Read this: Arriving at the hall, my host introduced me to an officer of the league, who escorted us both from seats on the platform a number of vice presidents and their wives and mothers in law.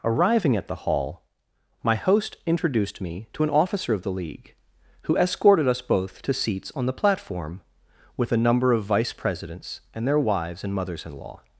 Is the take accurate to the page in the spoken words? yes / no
no